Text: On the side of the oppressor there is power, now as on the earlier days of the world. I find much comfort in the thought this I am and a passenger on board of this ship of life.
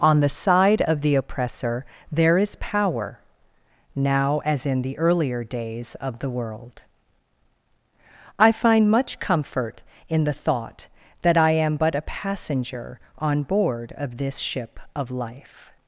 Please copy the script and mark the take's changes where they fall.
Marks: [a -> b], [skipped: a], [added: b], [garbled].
On the side of the oppressor there is power, now as [on -> in] the earlier days of the world. I find much comfort in the thought [this -> that] I am [and -> but] a passenger on board of this ship of life.